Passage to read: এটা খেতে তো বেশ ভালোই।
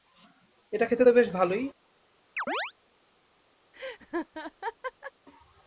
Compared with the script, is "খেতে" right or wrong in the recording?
right